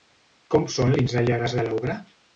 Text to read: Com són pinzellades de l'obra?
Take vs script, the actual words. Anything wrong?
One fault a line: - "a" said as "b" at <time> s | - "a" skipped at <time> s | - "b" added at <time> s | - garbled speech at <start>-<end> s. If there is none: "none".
none